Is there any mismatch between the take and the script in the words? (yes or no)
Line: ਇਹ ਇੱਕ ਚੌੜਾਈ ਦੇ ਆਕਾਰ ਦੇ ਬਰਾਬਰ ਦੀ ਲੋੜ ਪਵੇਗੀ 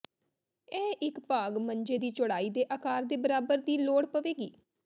yes